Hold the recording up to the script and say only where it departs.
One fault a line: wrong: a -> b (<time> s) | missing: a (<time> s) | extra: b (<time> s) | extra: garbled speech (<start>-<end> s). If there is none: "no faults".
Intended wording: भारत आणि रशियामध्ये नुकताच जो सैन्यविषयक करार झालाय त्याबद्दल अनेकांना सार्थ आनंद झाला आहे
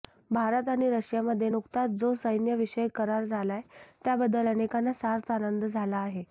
no faults